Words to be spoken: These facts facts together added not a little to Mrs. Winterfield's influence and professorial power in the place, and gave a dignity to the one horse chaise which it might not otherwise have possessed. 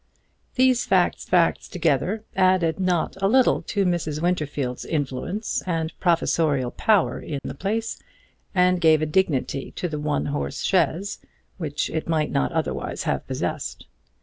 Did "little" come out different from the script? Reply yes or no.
no